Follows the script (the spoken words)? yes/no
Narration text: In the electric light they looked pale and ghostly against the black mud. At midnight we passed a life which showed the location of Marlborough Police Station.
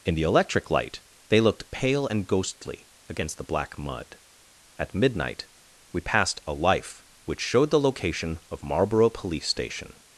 yes